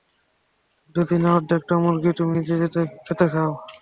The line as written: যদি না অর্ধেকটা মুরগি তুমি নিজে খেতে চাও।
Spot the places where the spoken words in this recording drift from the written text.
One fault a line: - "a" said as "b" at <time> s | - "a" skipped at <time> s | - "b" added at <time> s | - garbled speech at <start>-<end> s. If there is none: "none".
none